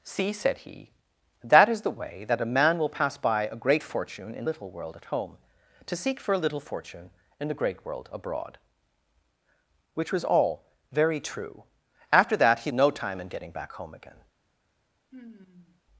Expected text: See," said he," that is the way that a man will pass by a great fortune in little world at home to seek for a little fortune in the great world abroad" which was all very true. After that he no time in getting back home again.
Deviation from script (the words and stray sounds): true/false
true